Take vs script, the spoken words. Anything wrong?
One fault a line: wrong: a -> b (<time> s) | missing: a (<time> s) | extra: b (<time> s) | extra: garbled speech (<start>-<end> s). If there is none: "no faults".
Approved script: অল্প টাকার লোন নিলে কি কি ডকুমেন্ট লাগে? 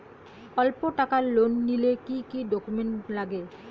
no faults